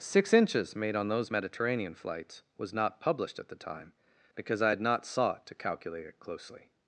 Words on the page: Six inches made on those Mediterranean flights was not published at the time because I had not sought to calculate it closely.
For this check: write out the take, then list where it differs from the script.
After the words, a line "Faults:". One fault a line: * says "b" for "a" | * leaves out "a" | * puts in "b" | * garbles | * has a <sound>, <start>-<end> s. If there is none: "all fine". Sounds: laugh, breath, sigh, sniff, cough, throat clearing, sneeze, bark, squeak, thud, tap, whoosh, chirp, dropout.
Six inches made on those Mediterranean flights was not published at the time because I had not sought to calculate it closely.
Faults:
all fine